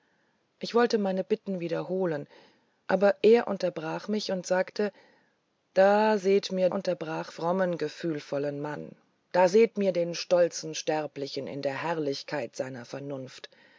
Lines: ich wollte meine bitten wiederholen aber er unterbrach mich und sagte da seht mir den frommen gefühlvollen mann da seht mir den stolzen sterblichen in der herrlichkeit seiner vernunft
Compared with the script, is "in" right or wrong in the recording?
right